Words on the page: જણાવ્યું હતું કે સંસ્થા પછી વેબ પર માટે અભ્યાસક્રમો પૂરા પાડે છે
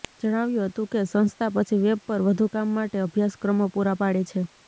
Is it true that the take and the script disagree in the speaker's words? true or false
true